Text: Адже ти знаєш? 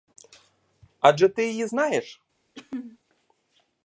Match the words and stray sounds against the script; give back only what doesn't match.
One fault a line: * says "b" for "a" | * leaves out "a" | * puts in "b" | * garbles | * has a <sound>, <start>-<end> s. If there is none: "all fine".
* puts in "її"
* has a throat clearing, 2.6-3.0 s